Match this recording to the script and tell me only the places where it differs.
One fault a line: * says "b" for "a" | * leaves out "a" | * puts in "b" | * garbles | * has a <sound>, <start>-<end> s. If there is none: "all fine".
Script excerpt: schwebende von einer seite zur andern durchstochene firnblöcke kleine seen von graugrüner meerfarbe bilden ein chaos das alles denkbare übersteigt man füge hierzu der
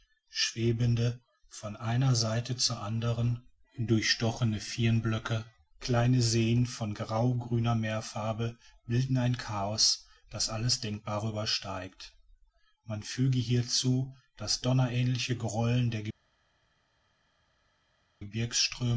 * puts in "das donnerähnliche grollen"